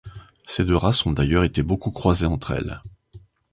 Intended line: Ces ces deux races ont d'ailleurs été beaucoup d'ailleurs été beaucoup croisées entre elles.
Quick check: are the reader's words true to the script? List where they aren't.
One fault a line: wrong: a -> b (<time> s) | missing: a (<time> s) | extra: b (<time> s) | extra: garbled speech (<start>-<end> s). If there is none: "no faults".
missing: ces (0.7 s)
missing: d'ailleurs été beaucoup (1.9 s)